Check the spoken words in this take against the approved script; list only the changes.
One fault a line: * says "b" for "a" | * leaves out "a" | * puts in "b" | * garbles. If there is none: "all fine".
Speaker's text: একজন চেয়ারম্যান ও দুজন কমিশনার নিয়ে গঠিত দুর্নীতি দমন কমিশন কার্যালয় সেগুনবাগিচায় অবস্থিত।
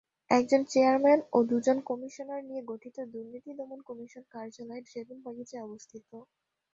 all fine